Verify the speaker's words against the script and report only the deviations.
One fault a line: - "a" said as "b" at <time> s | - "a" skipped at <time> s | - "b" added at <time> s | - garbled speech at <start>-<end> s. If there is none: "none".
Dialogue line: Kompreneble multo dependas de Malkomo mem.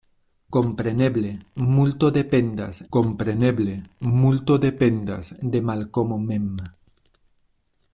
- "kompreneble multo dependas" added at 3.0 s